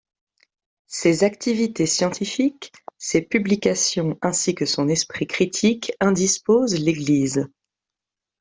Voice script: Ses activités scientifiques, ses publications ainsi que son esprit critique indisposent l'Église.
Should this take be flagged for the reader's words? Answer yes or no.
no